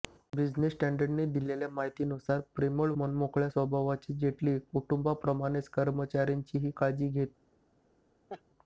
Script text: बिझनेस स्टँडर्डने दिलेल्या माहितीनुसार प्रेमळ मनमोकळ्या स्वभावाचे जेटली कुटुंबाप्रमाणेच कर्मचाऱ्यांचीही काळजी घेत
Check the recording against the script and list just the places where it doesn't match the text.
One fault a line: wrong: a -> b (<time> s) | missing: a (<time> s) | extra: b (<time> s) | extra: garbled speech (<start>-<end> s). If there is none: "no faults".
no faults